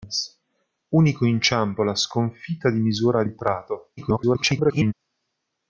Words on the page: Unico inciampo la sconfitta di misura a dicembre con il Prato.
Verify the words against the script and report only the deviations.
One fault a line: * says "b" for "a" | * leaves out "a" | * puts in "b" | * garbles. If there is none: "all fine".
* leaves out "dicembre con"
* garbles